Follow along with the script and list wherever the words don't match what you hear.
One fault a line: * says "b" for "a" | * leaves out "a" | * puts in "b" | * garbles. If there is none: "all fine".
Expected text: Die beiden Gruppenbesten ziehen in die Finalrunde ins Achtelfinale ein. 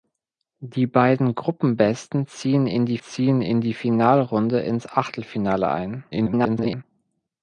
* puts in "ziehen in die"
* garbles